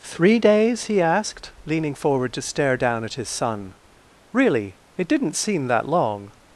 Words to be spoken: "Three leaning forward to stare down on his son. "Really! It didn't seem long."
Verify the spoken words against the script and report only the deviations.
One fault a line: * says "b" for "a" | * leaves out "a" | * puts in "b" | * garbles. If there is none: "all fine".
* puts in "days he asked"
* says "at" for "on"
* puts in "that"